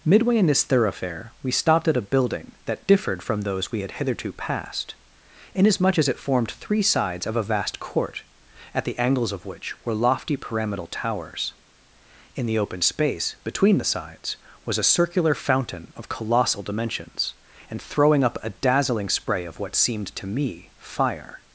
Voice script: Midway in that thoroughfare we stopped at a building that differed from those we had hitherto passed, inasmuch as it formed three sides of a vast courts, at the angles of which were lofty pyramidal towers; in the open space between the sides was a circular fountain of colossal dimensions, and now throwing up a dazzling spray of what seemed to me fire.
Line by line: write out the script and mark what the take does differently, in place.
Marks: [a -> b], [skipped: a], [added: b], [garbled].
Midway in [that -> this] thoroughfare we stopped at a building that differed from those we had hitherto passed, inasmuch as it formed three sides of a vast [courts, -> court] at the angles of which were lofty pyramidal towers; in the open space between the sides was a circular fountain of colossal dimensions, and [skipped: now] throwing up a dazzling spray of what seemed to me fire.